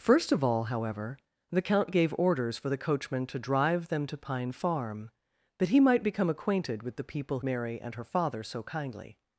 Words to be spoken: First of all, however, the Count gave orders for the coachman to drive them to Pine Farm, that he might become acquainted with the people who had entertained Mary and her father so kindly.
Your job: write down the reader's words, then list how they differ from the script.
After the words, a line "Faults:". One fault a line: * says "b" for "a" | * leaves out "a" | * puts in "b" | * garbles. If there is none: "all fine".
First of all, however, the Count gave orders for the coachman to drive them to Pine Farm, that he might become acquainted with the people Mary and her father so kindly.
Faults:
* leaves out "who had entertained"